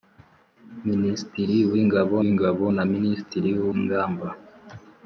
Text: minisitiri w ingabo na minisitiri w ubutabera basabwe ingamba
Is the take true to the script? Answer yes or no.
no